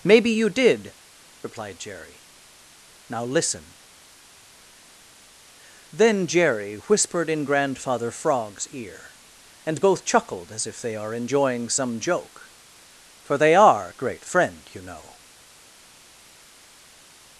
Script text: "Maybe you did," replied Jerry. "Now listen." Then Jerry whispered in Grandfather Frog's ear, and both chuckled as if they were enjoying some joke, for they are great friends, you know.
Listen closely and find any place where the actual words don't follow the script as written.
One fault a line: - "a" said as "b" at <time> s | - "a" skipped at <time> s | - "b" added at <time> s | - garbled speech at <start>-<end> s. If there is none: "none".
- "were" said as "are" at 10.9 s
- "friends" said as "friend" at 14.2 s